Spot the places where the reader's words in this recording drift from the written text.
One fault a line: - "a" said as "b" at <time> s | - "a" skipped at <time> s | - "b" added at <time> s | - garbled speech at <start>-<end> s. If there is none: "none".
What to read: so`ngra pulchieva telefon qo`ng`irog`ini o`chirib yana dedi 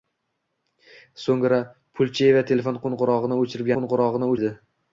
- "yana" said as "qo`ng`irog`ini" at 3.8 s